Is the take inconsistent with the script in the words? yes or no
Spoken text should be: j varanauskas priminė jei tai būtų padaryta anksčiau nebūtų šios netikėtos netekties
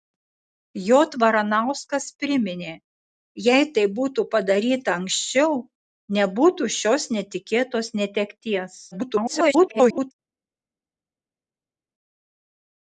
yes